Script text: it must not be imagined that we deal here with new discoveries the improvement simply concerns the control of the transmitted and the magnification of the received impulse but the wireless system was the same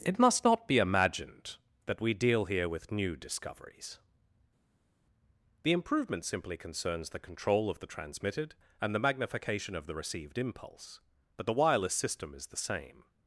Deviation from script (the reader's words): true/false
true